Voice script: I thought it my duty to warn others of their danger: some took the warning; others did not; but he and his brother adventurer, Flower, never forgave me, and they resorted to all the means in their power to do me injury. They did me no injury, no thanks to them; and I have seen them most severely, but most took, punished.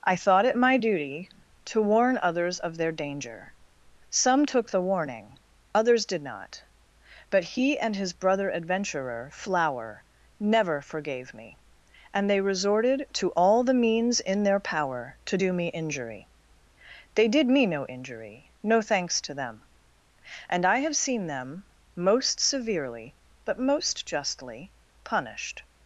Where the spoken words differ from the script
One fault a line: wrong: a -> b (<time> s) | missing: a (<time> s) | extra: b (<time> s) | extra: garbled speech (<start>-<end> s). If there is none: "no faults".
wrong: took -> justly (24.0 s)